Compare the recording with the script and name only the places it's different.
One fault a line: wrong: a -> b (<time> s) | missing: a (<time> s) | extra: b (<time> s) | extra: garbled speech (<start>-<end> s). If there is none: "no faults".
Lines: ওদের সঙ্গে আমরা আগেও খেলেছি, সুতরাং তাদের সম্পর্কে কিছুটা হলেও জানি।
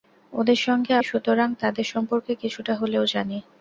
missing: আমরা আগেও খেলেছি (0.9 s)